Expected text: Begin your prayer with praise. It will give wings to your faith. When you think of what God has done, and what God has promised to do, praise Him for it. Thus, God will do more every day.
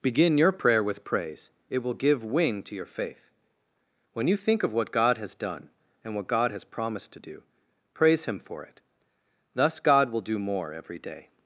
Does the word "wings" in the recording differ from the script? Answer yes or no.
yes